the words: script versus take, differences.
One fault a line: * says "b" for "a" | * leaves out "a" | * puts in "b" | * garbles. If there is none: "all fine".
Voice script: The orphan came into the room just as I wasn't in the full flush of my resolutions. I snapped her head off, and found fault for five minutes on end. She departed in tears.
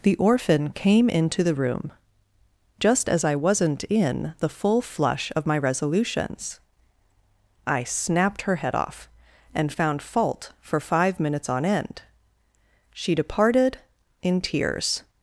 all fine